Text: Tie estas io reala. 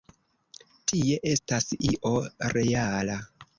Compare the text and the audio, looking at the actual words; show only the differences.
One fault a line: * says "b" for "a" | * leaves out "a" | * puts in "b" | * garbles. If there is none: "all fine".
all fine